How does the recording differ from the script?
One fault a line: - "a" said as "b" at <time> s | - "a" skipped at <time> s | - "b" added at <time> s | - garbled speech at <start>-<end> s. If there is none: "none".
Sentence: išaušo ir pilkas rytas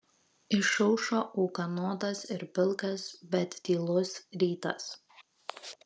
- "ūkanotas" added at 1.4 s
- "bet tylus" added at 3.4 s